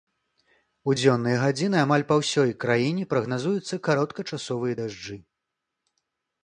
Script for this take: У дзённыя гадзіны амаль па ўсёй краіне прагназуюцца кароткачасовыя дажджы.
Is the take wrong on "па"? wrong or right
right